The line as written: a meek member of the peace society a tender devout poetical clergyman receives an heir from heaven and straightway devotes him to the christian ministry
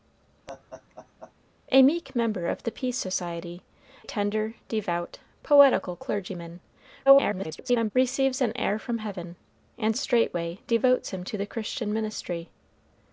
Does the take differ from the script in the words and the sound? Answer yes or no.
yes